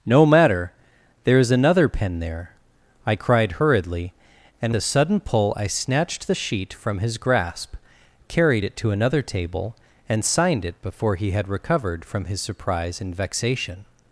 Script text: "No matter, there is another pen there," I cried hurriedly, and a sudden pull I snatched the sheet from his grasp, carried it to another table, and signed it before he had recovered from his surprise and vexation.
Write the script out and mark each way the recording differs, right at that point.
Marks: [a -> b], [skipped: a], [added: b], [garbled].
"No matter, there is another pen there," I cried hurriedly, and a sudden pull I snatched the sheet from his grasp, carried it to another table, and signed it before he had recovered from his surprise and vexation.